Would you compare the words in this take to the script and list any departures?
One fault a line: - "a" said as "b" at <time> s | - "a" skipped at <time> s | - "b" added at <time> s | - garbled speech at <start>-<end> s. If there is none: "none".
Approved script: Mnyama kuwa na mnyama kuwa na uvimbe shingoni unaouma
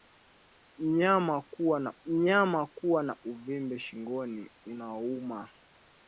none